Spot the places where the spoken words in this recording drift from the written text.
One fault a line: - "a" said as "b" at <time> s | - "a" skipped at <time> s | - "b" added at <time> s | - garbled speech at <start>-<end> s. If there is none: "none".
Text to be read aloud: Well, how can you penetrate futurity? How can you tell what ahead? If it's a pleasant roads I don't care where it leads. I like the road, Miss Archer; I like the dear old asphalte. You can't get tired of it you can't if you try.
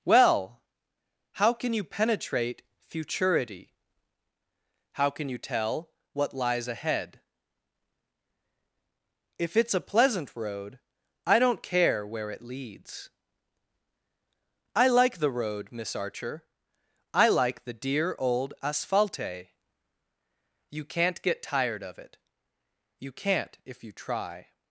- "lies" added at 6.3 s
- "roads" said as "road" at 10.3 s